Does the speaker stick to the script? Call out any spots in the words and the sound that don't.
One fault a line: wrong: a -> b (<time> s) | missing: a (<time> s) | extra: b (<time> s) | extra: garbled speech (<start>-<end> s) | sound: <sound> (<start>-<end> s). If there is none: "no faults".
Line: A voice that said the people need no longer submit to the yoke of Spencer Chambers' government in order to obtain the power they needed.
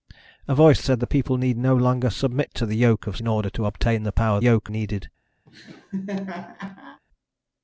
missing: that (0.8 s)
missing: Spencer Chambers government (3.2 s)
wrong: they -> yoke (4.4 s)
sound: laugh (5.5-7.0 s)